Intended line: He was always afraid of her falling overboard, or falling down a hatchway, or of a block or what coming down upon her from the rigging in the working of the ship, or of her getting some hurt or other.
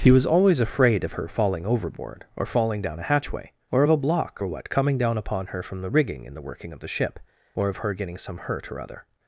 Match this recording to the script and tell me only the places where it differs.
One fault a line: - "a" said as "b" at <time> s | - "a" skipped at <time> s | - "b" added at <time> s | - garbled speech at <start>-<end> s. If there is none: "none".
none